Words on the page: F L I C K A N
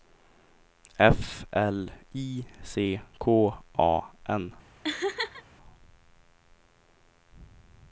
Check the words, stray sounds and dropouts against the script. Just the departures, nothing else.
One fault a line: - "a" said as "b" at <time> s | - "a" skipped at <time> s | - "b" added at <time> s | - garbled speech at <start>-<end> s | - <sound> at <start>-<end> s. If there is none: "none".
- laugh at 4.8-5.4 s